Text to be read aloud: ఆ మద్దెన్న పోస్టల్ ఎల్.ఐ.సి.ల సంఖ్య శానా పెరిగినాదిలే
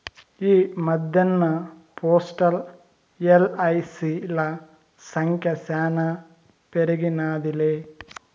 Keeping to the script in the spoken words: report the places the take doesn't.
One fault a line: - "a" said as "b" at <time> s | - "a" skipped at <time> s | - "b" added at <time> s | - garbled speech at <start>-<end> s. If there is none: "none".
- "ఆ" said as "ఈ" at 0.4 s